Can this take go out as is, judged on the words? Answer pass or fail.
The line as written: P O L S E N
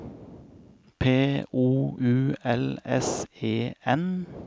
fail